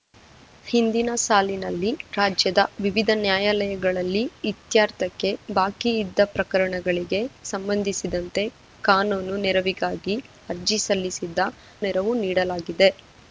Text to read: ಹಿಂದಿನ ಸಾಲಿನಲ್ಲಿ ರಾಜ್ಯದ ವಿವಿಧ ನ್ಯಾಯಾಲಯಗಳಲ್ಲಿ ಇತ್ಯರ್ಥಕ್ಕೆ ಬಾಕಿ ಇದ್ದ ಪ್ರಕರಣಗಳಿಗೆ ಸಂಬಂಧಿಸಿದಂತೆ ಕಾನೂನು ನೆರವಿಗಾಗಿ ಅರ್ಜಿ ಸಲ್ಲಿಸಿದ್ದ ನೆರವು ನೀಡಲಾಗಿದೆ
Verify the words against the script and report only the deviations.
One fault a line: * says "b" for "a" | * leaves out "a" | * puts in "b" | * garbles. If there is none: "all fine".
all fine